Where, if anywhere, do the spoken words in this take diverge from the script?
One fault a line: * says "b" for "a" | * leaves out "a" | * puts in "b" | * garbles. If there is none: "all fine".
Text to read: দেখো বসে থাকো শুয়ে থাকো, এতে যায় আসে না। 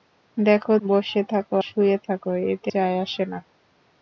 all fine